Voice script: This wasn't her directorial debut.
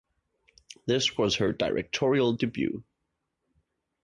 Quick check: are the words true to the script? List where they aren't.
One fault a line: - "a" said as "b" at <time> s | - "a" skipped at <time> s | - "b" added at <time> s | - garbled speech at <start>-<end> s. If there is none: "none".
- "wasn't" said as "was" at 1.1 s